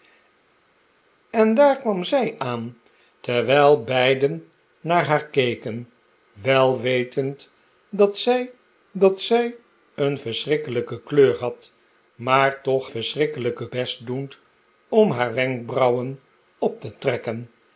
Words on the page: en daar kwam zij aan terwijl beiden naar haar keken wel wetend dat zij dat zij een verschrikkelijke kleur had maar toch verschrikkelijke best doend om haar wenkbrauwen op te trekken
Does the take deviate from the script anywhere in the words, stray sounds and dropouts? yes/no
no